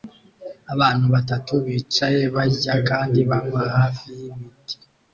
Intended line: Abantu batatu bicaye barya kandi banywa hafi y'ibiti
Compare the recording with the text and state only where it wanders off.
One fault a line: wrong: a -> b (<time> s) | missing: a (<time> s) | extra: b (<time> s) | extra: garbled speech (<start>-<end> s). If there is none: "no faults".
no faults